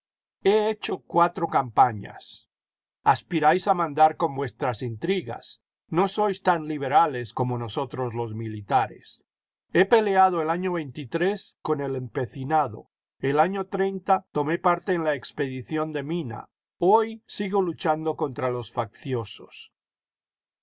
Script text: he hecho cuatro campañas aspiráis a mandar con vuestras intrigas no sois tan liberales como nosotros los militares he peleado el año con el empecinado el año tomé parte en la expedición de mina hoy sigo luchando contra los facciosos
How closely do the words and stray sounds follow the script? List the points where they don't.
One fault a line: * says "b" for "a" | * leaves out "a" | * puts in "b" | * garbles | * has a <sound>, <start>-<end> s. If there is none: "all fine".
all fine